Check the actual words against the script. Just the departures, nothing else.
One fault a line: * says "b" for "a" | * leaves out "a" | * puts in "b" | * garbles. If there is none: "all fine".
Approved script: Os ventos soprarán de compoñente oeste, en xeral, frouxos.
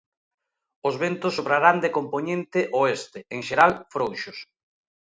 all fine